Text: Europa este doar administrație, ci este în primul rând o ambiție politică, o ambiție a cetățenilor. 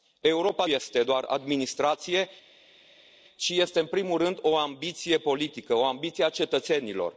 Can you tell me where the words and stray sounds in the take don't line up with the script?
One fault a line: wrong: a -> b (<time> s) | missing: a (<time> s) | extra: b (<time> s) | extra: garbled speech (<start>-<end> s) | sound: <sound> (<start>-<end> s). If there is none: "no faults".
no faults